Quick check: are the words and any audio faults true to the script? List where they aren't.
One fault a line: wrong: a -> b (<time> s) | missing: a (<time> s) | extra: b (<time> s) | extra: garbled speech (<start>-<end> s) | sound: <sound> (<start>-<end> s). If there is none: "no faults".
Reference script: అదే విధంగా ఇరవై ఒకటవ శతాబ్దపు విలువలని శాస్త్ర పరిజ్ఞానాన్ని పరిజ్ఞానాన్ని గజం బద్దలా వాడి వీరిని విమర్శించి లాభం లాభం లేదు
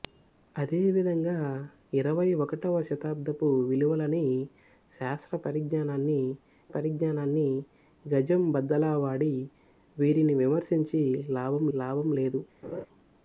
sound: laugh (12.6-12.9 s)